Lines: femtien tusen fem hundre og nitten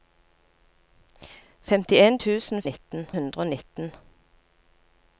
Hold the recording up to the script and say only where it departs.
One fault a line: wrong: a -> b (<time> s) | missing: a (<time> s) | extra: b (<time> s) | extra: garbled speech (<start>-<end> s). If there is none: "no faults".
wrong: fem -> nitten (2.6 s)